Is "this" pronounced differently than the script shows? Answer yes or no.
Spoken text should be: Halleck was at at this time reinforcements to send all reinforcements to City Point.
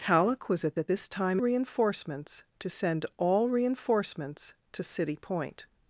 no